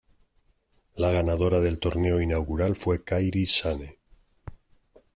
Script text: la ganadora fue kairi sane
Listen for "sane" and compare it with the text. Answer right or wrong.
right